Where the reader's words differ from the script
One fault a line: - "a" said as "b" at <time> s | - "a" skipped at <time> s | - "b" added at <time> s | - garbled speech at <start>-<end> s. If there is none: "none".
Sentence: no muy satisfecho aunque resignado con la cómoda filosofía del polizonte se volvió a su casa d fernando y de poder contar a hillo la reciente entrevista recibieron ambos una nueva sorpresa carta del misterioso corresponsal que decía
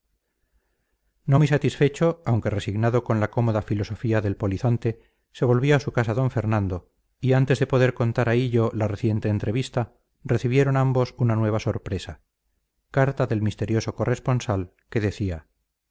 - "antes" added at 7.3 s